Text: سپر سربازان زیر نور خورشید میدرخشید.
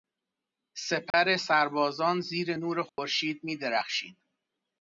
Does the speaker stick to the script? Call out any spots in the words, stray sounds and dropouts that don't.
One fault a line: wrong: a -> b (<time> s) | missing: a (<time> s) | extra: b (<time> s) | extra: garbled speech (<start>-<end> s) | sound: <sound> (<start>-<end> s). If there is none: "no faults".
sound: dropout (1.1-1.1 s)
sound: dropout (2.9-3.0 s)